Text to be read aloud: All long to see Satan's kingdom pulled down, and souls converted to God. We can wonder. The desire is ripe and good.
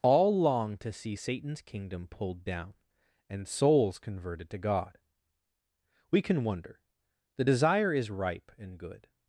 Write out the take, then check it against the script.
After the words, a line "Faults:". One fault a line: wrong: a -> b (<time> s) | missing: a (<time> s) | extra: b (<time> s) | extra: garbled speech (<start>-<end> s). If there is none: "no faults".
All long to see Satan's kingdom pulled down, and souls converted to God. We can wonder. The desire is ripe and good.
Faults:
no faults